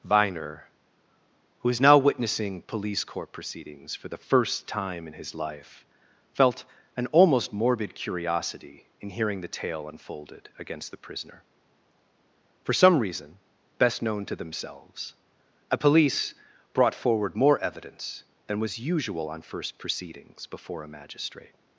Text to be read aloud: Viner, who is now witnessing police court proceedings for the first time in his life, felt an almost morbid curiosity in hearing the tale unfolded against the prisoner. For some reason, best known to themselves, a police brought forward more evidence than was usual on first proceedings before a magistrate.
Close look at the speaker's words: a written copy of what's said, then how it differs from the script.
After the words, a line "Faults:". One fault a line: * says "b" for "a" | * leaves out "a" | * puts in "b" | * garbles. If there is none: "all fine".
Viner, who is now witnessing police court proceedings for the first time in his life, felt an almost morbid curiosity in hearing the tale unfolded against the prisoner. For some reason, best known to themselves, a police brought forward more evidence than was usual on first proceedings before a magistrate.
Faults:
all fine